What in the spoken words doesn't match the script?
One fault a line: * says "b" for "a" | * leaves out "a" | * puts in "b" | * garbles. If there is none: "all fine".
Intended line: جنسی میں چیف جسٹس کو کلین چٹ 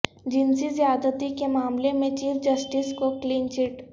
* puts in "زیادتی کے معاملے"